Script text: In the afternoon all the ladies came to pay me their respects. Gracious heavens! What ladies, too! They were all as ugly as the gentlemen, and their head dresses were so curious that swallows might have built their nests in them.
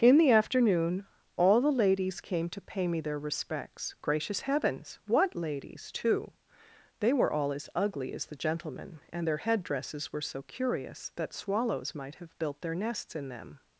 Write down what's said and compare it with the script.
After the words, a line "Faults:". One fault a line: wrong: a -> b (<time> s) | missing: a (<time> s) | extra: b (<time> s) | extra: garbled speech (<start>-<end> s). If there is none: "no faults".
In the afternoon all the ladies came to pay me their respects. Gracious heavens! What ladies, too! They were all as ugly as the gentlemen, and their head dresses were so curious that swallows might have built their nests in them.
Faults:
no faults